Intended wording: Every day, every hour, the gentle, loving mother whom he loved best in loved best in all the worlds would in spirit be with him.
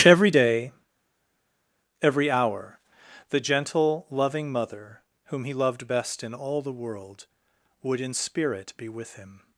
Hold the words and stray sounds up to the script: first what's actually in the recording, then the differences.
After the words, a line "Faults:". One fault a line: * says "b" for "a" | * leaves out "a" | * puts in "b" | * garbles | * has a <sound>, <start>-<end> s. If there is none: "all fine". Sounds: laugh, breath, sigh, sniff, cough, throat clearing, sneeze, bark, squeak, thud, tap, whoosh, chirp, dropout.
Every day, every hour, the gentle, loving mother whom he loved best in all the world would in spirit be with him.
Faults:
* leaves out "loved best in"
* says "world" for "worlds"